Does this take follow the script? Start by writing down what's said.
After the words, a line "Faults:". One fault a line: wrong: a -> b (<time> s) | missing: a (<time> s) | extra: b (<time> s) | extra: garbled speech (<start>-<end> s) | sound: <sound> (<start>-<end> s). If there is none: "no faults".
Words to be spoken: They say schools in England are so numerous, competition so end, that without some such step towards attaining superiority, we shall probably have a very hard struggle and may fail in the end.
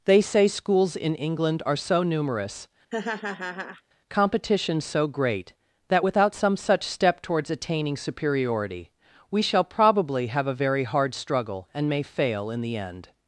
They say schools in England are so numerous, competition so great, that without some such step towards attaining superiority, we shall probably have a very hard struggle and may fail in the end.
Faults:
sound: laugh (2.9-3.8 s)
wrong: end -> great (5.1 s)